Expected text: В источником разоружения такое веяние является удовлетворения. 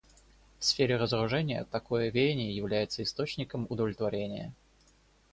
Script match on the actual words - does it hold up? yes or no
no